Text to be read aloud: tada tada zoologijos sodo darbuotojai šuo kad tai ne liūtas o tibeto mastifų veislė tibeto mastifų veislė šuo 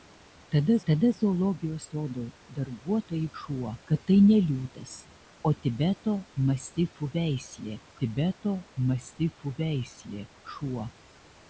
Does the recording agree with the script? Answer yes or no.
yes